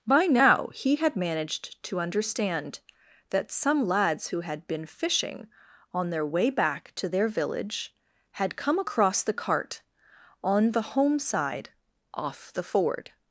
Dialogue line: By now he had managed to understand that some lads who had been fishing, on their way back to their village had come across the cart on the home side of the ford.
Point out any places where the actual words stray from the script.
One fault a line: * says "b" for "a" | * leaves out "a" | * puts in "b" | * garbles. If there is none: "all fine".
* says "off" for "of"